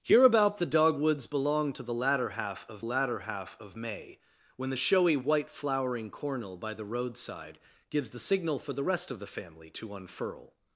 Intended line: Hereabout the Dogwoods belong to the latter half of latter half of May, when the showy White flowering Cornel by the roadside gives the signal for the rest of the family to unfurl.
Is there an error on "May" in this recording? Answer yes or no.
no